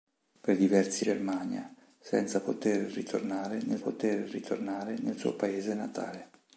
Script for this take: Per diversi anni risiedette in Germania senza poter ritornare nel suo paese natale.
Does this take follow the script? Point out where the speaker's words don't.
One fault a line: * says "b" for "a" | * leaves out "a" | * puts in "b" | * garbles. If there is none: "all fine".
* says "Germania senza poter ritornare nel" for "anni risiedette in Germania senza"